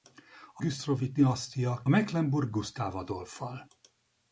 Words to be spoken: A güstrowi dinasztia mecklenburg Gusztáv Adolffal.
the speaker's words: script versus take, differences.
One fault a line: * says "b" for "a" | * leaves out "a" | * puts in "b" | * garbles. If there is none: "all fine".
all fine